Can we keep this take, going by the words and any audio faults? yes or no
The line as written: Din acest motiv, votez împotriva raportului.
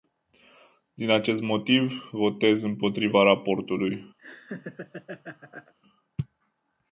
no